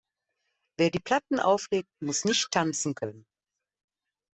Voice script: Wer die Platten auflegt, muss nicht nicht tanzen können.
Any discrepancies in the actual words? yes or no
yes